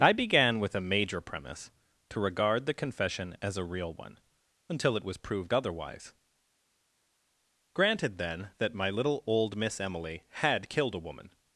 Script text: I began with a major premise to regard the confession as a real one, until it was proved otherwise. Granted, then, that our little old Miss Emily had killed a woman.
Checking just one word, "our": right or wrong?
wrong